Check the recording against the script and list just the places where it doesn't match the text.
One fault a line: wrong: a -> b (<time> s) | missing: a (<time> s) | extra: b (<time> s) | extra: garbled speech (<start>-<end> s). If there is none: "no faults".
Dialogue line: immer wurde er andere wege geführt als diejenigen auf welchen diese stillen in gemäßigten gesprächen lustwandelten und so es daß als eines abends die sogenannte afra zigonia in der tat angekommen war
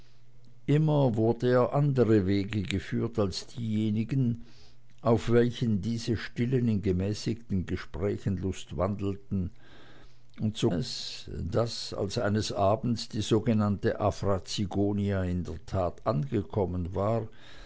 no faults